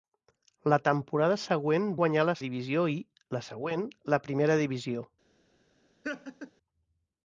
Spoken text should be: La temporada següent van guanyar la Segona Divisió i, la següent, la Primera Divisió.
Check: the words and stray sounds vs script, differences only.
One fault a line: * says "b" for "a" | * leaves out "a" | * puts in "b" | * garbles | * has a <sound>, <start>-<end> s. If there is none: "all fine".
* leaves out "van"
* leaves out "Segona"
* has a laugh, 6.0-6.5 s